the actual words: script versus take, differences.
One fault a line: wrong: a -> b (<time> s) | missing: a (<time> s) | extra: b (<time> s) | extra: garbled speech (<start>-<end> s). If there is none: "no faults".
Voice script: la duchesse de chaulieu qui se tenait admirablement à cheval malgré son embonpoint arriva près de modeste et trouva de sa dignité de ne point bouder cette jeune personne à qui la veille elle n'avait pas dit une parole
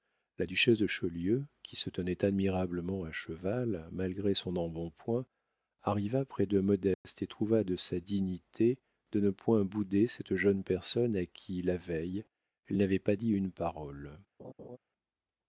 no faults